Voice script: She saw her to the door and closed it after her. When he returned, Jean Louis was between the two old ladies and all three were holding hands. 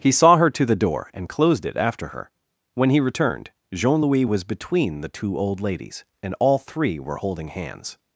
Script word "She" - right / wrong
wrong